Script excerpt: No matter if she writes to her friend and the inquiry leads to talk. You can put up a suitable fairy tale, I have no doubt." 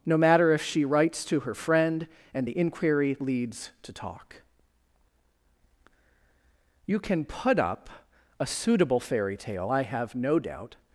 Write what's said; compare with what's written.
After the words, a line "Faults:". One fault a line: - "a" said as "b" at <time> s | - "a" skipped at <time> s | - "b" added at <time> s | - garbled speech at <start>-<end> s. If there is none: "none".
No matter if she writes to her friend and the inquiry leads to talk. You can put up a suitable fairy tale, I have no doubt."
Faults:
none